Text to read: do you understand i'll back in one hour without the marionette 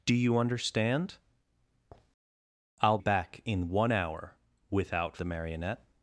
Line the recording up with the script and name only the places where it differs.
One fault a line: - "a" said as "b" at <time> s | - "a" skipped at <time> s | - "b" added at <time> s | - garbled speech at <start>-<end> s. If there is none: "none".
none